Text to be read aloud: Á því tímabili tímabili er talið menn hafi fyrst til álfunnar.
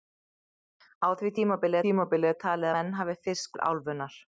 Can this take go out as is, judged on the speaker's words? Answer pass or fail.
pass